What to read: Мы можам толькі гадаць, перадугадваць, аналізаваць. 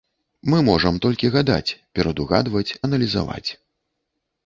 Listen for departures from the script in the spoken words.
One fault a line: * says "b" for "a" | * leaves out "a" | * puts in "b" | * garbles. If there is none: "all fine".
all fine